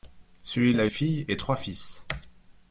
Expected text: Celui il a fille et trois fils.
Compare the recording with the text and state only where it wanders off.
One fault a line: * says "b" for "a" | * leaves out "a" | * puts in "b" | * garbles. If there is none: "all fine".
all fine